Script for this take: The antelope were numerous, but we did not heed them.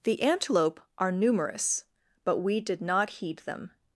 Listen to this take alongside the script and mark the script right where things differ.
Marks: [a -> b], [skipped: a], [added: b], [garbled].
The antelope [were -> are] numerous, but we did not heed them.